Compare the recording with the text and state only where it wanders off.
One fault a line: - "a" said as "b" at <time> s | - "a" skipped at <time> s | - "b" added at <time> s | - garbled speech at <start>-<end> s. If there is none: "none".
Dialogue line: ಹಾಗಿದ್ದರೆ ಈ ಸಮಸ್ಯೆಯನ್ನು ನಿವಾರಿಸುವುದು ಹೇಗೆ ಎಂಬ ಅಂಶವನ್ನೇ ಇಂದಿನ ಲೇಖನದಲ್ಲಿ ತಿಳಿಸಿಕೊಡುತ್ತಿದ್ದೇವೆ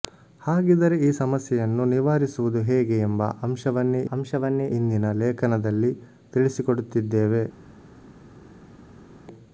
- "ಅಂಶವನ್ನೇ" added at 4.1 s